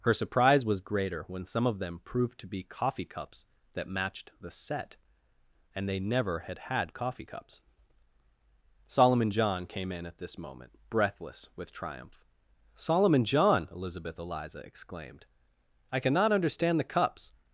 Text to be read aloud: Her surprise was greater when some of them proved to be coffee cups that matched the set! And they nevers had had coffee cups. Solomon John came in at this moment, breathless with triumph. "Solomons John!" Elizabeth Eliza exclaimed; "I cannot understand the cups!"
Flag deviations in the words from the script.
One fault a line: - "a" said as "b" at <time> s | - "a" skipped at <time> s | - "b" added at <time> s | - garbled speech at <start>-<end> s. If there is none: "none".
- "nevers" said as "never" at 6.0 s
- "Solomons" said as "Solomon" at 12.8 s